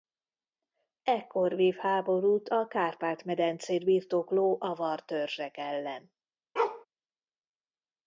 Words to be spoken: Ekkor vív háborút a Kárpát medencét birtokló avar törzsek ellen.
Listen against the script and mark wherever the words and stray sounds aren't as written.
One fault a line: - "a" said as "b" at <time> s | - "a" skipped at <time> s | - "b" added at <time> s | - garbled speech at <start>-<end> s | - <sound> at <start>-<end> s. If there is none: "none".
- bark at 6.6-6.9 s